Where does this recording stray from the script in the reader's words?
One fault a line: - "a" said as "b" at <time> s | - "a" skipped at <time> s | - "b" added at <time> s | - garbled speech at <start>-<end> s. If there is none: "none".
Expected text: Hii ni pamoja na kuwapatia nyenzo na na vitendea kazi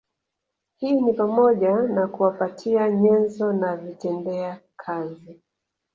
- "na" skipped at 3.8 s